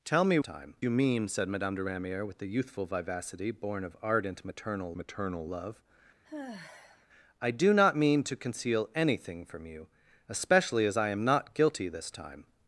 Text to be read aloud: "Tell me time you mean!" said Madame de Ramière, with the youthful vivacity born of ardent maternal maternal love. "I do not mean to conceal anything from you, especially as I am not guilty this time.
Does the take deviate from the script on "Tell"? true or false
false